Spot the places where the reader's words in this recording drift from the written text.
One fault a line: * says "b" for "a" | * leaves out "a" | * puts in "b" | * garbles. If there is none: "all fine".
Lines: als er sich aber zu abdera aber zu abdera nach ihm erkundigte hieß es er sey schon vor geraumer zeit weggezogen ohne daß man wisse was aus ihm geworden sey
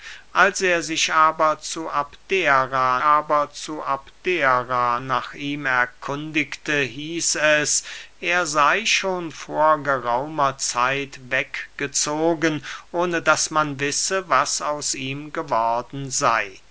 all fine